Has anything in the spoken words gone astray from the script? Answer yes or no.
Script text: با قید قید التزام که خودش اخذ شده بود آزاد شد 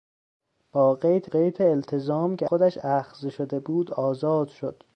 no